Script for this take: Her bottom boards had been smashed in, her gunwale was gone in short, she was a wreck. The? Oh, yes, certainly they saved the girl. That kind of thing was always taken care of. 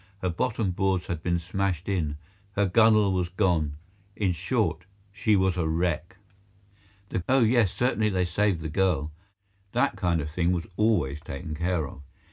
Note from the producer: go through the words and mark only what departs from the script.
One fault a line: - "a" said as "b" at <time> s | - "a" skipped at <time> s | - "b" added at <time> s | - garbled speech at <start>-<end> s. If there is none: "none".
none